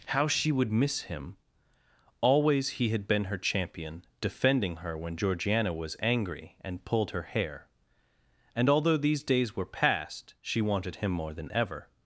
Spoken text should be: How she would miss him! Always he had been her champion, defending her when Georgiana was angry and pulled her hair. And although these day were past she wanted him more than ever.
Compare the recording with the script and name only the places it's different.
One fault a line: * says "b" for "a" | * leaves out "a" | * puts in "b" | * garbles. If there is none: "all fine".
* says "days" for "day"